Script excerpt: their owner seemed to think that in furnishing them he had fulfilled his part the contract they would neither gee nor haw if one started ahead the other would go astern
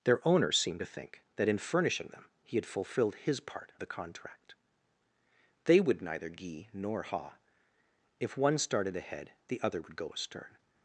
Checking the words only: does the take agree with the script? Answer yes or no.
yes